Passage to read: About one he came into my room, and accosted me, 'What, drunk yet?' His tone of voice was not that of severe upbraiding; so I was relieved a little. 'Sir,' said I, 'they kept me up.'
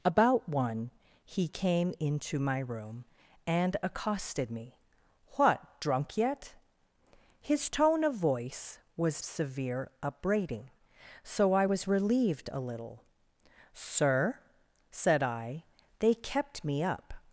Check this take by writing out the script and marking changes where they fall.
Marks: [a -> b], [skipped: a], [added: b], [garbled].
About one he came into my room, and accosted me, 'What, drunk yet?' His tone of voice was [skipped: not that of] severe upbraiding; so I was relieved a little. 'Sir,' said I, 'they kept me up.'